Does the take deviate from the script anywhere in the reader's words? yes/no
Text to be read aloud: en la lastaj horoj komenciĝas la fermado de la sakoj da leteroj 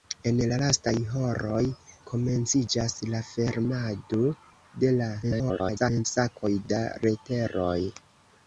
yes